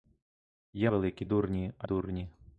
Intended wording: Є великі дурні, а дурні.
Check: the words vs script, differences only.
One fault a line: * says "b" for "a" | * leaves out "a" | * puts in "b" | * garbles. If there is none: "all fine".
all fine